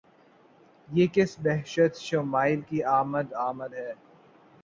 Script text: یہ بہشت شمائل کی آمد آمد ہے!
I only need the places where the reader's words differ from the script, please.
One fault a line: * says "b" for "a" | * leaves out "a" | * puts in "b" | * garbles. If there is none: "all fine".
* puts in "کس"